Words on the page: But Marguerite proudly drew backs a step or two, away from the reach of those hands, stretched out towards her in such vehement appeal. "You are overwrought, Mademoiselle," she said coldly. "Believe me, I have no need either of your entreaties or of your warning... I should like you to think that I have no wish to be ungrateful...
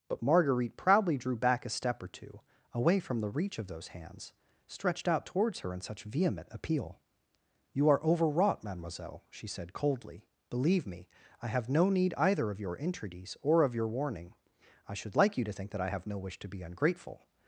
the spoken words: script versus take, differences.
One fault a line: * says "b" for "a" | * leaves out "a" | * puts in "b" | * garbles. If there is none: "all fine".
* says "back" for "backs"